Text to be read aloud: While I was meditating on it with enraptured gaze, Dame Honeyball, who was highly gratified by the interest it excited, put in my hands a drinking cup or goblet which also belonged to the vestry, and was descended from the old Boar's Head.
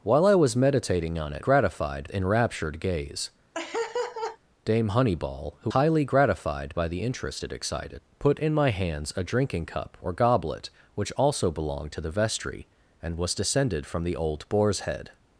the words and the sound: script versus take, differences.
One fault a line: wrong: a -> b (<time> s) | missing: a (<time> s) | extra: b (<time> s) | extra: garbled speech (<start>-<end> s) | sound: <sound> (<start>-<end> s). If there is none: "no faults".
wrong: with -> gratified (1.4 s)
sound: laugh (3.5-4.4 s)
missing: was (5.7 s)